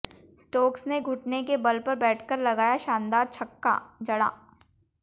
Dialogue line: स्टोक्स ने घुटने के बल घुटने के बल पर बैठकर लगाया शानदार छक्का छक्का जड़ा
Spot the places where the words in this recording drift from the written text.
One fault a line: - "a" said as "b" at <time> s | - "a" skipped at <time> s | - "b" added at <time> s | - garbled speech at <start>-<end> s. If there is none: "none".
- "घुटने के बल" skipped at 1.8 s
- "छक्का" skipped at 3.8 s